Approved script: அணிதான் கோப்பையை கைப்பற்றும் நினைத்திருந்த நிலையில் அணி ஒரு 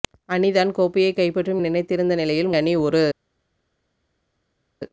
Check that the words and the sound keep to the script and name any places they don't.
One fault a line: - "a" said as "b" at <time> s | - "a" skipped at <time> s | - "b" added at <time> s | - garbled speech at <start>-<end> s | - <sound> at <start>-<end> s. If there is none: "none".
none